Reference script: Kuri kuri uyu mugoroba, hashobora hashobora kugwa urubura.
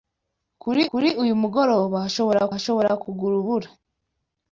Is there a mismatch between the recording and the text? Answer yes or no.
no